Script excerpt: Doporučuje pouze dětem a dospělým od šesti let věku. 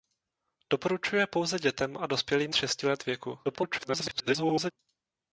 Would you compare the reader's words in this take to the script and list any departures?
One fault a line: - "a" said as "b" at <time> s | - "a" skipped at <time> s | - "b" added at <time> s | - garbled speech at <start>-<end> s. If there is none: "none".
- "od" skipped at 2.5 s
- garbled speech at 3.4-4.7 s